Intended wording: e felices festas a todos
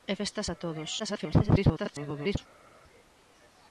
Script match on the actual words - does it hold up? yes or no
no